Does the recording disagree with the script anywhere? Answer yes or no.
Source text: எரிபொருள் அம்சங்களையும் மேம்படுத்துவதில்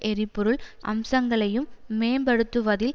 no